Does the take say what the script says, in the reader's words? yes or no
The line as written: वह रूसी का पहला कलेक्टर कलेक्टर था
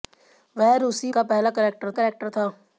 yes